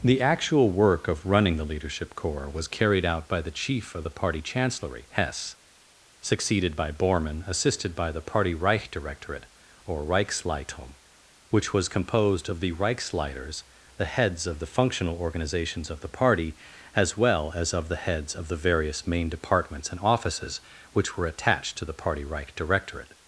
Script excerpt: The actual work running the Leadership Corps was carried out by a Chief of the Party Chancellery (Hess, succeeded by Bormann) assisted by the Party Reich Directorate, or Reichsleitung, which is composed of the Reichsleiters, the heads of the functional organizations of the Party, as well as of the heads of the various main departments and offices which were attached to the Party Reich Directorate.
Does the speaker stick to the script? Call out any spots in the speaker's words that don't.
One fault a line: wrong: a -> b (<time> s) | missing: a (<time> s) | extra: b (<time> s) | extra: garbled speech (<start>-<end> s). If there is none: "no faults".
extra: of (1.1 s)
wrong: a -> the (3.4 s)
wrong: is -> was (11.7 s)